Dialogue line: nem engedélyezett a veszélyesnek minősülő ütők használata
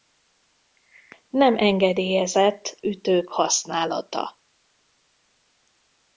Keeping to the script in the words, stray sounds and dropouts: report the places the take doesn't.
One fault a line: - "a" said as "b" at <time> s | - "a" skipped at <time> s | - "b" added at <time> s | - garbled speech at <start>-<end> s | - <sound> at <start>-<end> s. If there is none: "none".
- "a veszélyesnek minősülő" skipped at 2.8 s